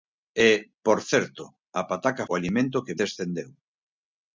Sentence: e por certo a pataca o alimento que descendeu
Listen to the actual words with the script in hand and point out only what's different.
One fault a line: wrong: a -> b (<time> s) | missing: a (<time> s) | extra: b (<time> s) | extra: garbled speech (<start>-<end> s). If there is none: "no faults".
no faults